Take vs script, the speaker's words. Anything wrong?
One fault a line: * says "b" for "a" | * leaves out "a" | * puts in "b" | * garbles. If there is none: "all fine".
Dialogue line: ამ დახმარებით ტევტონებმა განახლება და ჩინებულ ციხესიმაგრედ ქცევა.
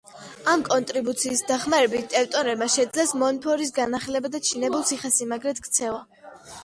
* puts in "კონტრიბუციის"
* puts in "შეძლეს მონფორის"